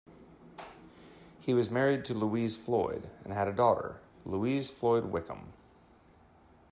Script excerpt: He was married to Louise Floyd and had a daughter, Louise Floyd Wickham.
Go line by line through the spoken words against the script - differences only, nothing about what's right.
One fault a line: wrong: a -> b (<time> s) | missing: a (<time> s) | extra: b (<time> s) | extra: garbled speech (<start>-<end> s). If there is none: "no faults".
no faults